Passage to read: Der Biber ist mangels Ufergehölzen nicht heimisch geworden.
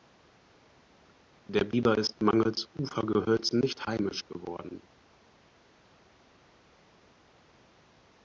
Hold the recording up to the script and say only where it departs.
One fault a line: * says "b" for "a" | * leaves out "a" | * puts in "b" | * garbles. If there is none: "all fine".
all fine